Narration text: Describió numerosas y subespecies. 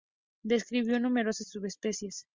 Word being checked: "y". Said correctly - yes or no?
yes